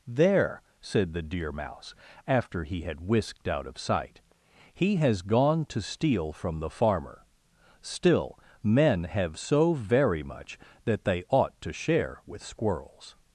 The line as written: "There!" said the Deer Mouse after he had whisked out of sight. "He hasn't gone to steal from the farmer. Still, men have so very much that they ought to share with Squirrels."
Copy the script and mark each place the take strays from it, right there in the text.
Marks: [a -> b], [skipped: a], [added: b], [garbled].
"There!" said the Deer Mouse after he had whisked out of sight. "He [hasn't -> has] gone to steal from the farmer. Still, men have so very much that they ought to share with Squirrels."